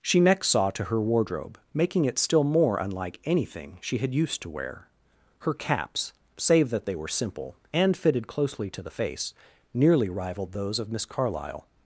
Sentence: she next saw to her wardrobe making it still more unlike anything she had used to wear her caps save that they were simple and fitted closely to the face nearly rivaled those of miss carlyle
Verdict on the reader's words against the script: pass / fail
pass